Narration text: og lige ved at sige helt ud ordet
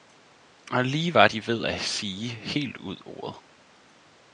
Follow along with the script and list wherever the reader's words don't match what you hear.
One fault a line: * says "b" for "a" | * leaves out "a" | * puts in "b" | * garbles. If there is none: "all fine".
* puts in "var de"